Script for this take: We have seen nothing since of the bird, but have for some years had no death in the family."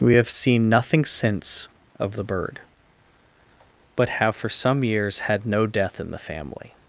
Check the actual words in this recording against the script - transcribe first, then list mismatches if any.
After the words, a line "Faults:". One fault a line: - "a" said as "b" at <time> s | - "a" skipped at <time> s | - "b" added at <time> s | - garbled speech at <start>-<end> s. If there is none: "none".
We have seen nothing since of the bird, but have for some years had no death in the family."
Faults:
none